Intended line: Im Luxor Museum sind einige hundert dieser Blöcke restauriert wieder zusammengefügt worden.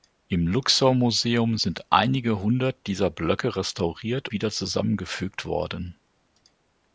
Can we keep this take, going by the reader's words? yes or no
yes